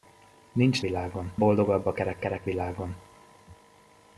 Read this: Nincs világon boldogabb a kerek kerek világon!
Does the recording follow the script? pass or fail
pass